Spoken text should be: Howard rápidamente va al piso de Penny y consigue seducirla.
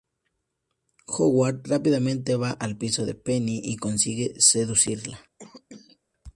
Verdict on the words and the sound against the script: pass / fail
fail